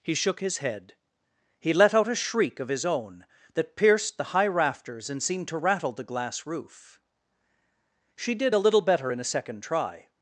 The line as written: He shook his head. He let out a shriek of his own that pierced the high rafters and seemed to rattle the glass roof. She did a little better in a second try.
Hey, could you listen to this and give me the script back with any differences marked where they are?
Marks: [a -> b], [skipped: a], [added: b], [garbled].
He shook his head. He let out a shriek of his own that pierced the high rafters and seemed to rattle the glass roof. She did a little better in a second try.